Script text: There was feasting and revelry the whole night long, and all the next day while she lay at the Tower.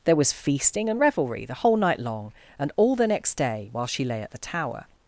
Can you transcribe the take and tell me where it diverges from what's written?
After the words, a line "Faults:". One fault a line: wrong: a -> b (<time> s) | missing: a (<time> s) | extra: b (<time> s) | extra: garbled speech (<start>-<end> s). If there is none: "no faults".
There was feasting and revelry the whole night long, and all the next day while she lay at the Tower.
Faults:
no faults